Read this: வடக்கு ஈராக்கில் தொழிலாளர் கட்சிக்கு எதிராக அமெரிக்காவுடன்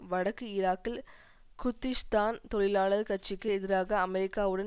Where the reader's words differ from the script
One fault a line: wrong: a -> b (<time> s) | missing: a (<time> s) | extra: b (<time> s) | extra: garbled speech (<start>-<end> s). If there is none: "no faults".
extra: குர்திஷ்தான் (1.6 s)